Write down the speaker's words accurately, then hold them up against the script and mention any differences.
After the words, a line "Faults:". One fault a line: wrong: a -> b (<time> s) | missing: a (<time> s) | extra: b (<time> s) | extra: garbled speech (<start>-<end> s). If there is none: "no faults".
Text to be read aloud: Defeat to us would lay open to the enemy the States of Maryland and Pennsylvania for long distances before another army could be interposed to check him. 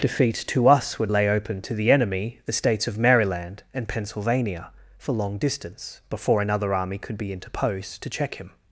Defeat to us would lay open to the enemy the States of Maryland and Pennsylvania for long distance before another army could be interposed to check him.
Faults:
wrong: distances -> distance (5.4 s)